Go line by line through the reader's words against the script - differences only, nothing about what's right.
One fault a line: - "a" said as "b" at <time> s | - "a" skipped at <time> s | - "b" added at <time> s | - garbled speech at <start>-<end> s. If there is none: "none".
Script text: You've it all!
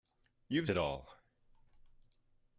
none